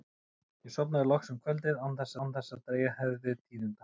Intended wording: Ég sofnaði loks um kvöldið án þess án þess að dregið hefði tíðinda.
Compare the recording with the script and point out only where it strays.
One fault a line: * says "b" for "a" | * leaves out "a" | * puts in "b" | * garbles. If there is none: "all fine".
all fine